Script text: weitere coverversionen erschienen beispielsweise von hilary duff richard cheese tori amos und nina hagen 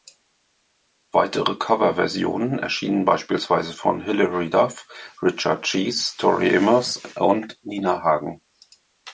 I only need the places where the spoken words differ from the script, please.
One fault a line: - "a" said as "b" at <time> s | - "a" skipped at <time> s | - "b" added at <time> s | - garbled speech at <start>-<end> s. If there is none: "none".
none